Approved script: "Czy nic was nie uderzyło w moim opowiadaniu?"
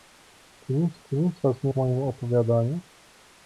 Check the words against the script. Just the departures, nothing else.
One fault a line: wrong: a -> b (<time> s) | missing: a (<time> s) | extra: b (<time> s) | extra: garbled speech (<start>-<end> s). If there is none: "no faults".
extra: czy nic (1.0 s)
missing: uderzyło (1.7 s)